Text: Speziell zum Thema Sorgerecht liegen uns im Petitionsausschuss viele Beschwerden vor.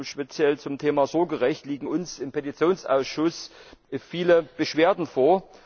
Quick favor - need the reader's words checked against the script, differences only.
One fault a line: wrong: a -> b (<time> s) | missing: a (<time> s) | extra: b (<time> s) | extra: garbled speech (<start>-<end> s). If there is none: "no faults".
no faults